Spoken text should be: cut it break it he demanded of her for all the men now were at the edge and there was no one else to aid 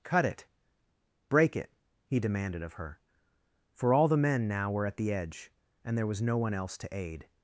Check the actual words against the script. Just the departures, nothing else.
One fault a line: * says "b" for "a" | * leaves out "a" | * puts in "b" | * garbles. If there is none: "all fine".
all fine